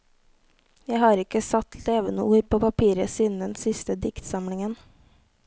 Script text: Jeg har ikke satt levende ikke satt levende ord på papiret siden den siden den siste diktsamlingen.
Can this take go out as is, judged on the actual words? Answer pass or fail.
fail